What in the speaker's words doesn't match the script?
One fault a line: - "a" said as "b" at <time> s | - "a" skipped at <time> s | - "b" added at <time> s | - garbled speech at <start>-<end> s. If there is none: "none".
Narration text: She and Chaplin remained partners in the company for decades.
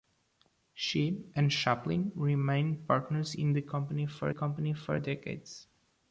- "company for" added at 4.3 s